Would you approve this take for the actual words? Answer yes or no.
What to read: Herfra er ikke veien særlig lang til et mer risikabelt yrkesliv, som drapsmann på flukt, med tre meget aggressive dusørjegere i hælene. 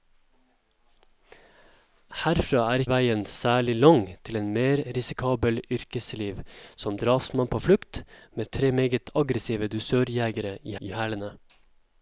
no